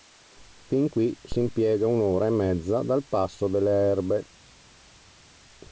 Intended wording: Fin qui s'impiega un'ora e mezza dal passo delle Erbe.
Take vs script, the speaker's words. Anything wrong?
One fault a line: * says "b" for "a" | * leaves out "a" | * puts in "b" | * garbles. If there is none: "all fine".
all fine